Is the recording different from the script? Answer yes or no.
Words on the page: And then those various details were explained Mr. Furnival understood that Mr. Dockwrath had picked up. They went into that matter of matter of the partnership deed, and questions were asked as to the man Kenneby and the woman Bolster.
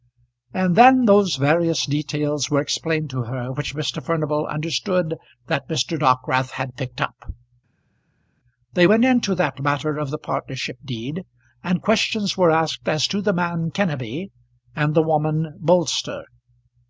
yes